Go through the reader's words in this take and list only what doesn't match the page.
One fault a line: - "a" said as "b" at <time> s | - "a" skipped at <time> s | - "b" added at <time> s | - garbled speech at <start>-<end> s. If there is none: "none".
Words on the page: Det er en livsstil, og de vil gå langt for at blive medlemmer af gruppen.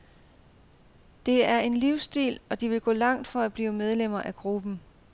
none